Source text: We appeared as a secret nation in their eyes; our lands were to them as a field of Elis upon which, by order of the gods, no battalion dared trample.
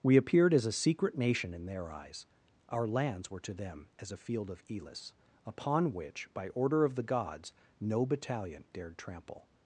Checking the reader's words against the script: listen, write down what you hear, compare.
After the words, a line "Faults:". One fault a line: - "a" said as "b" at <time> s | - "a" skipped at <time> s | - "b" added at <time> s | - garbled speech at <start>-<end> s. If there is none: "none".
We appeared as a secret nation in their eyes; our lands were to them as a field of Elis upon which, by order of the gods, no battalion dared trample.
Faults:
none